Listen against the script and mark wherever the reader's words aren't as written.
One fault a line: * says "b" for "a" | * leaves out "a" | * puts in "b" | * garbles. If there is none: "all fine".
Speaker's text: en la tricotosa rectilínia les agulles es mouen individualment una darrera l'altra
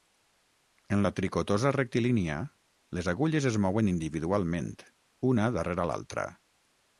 all fine